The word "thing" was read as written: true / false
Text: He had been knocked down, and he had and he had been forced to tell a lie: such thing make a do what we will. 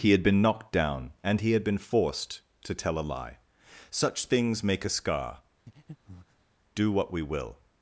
false